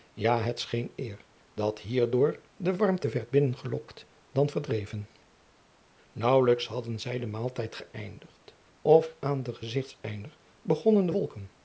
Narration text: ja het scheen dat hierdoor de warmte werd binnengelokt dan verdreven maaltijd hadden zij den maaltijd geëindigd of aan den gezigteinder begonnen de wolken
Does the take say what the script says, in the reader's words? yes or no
no